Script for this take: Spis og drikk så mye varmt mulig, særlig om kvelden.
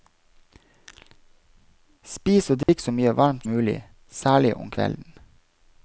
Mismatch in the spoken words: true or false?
false